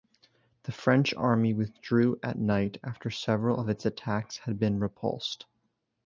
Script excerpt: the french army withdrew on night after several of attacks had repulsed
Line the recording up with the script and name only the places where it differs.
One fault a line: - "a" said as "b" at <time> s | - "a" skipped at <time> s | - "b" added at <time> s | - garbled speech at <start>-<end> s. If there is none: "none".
- "on" said as "at" at 2.2 s
- "its" added at 3.7 s
- "been" added at 4.6 s